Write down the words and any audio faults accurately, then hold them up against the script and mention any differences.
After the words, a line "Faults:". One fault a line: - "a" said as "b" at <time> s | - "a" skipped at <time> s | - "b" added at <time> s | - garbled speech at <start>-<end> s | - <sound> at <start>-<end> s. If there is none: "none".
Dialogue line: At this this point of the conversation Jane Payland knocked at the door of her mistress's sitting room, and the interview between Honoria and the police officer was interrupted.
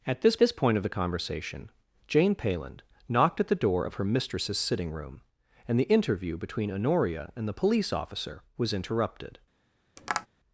At this this point of the conversation Jane Payland knocked at the door of her mistress's sitting room, and the interview between Honoria and the police officer was interrupted.
Faults:
- tap at 10.0-10.3 s